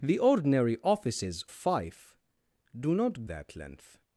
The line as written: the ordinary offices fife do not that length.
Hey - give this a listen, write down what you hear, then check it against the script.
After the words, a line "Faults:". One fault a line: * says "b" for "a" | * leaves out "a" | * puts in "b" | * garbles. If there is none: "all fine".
the ordinary offices fife do not that length.
Faults:
all fine